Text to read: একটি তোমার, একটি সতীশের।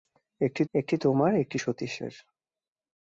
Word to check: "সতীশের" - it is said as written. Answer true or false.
true